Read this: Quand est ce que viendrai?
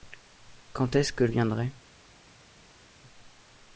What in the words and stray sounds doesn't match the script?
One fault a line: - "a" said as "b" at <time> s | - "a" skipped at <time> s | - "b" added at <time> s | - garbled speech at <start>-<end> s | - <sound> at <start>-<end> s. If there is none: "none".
none